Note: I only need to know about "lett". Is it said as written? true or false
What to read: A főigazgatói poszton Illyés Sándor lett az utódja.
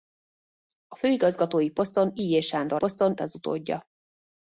false